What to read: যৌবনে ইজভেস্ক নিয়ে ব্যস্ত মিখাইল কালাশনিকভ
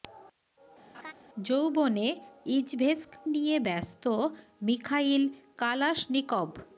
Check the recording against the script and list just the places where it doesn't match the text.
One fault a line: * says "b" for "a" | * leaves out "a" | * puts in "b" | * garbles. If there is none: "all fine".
all fine